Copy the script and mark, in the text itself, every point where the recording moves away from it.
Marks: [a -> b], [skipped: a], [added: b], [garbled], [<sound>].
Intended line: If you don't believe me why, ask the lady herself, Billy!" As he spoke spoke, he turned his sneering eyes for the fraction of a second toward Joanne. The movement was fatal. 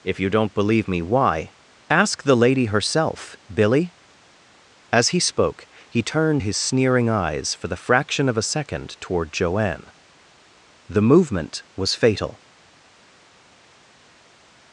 If you don't believe me why, ask the lady herself, Billy!" As he spoke [skipped: spoke,] he turned his sneering eyes for the fraction of a second toward Joanne. The movement was fatal.